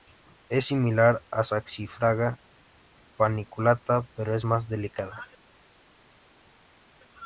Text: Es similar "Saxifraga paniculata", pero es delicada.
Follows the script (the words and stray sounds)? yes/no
no